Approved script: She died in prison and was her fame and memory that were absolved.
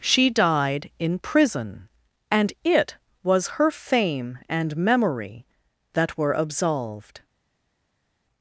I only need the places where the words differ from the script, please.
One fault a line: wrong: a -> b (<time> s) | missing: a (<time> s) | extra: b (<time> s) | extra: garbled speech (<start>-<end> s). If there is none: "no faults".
extra: it (2.6 s)